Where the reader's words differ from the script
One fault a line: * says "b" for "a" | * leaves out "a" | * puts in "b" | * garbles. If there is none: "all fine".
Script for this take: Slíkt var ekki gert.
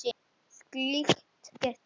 * leaves out "var ekki"